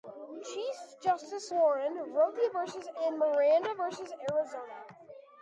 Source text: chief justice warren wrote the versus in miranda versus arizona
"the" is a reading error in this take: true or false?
false